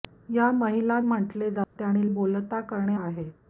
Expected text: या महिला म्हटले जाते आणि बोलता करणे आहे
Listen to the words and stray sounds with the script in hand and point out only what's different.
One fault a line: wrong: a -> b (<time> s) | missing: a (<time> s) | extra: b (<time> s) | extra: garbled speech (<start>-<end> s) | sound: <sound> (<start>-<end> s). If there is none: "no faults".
sound: dropout (1.6-1.8 s)